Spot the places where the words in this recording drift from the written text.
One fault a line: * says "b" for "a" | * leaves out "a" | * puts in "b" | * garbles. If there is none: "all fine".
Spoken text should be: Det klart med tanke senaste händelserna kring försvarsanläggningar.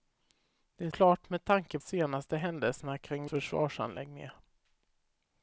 all fine